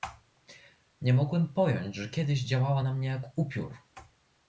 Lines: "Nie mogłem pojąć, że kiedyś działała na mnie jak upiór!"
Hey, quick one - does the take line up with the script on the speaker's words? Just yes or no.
yes